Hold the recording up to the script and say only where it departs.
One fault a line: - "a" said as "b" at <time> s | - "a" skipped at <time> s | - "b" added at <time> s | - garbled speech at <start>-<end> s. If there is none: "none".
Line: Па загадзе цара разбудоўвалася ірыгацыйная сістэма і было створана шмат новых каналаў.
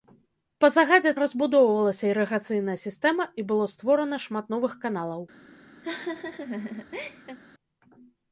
- "цара" skipped at 1.1 s